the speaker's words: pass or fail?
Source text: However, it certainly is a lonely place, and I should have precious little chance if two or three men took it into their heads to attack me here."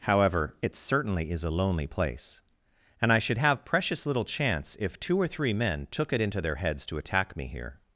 pass